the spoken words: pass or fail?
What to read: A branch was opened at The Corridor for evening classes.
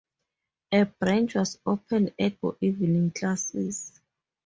fail